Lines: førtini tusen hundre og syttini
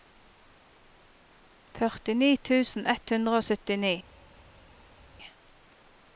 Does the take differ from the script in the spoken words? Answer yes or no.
yes